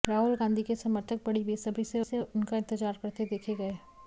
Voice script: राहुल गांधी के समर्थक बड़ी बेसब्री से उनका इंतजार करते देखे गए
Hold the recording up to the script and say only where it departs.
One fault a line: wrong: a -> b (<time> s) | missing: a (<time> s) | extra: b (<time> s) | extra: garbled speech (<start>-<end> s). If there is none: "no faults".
extra: से (2.0 s)